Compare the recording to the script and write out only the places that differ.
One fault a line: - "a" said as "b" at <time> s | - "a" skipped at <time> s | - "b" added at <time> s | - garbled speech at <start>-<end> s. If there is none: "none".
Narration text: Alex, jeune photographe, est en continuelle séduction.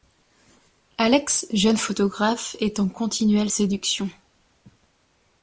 none